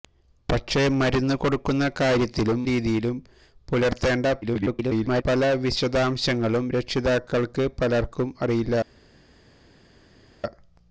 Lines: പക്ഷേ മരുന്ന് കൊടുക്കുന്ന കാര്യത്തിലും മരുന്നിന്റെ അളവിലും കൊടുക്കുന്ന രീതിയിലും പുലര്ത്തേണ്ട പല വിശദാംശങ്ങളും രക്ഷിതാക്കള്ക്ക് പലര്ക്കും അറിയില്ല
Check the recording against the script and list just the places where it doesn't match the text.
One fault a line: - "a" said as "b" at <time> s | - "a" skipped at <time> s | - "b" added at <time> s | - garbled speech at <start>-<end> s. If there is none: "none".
- "മരുന്നിന്റെ അളവിലും കൊടുക്കുന്ന" skipped at 2.6 s
- garbled speech at 4.4-5.2 s